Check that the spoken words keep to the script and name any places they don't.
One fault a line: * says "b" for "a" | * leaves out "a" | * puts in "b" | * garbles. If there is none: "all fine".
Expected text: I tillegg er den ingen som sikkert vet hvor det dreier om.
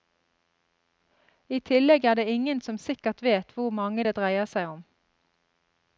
* says "det" for "den"
* puts in "mange"
* puts in "seg"